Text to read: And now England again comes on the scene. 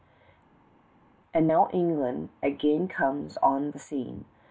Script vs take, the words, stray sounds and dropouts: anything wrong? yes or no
no